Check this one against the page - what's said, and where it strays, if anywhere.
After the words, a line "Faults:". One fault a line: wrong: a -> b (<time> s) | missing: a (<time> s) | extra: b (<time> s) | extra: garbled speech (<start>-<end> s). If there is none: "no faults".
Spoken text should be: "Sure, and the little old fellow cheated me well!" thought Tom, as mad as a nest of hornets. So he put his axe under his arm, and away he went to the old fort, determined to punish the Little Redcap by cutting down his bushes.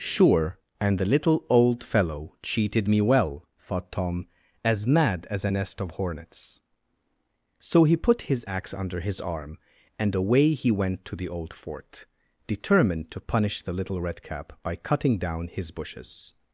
"Sure, and the little old fellow cheated me well!" thought Tom, as mad as a nest of hornets. So he put his axe under his arm, and away he went to the old fort, determined to punish the Little Redcap by cutting down his bushes.
Faults:
no faults